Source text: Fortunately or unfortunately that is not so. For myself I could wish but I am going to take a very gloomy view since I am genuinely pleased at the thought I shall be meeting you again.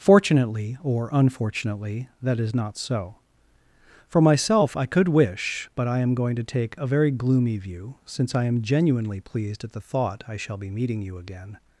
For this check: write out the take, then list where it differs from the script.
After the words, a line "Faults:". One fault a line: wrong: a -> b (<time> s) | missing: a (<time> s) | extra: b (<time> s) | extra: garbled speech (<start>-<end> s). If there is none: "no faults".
Fortunately or unfortunately that is not so. For myself I could wish but I am going to take a very gloomy view since I am genuinely pleased at the thought I shall be meeting you again.
Faults:
no faults